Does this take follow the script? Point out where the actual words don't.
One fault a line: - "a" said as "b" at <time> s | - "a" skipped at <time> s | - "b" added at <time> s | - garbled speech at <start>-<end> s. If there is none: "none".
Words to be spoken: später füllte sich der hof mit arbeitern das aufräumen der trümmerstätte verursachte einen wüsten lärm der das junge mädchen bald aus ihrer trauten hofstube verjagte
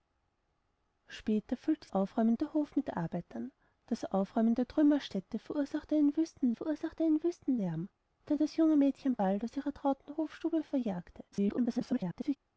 - "sich" said as "aufräumen" at 1.9 s
- "verursachte einen wüsten" added at 6.5 s
- garbled speech at 11.3-12.4 s